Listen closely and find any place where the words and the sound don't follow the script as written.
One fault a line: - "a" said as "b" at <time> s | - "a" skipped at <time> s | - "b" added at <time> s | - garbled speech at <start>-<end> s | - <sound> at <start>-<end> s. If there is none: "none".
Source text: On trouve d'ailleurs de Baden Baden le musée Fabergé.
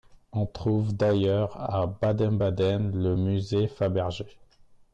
- "de" said as "à" at 1.6 s